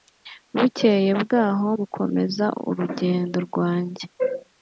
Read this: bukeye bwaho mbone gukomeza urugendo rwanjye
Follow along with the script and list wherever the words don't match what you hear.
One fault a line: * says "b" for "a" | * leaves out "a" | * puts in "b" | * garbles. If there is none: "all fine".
* leaves out "mbone"